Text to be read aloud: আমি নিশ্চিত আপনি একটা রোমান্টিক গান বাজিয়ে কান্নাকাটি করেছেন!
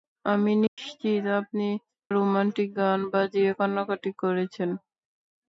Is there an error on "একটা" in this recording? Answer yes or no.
yes